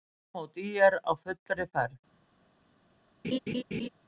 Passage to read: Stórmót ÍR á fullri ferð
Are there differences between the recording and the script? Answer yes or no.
no